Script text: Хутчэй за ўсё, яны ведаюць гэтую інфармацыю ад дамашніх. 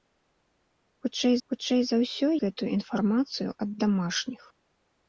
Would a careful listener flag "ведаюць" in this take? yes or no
yes